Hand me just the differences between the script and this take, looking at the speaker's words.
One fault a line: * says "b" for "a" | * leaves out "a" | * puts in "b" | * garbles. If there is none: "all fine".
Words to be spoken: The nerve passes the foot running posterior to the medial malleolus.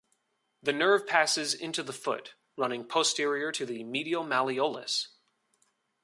* puts in "into"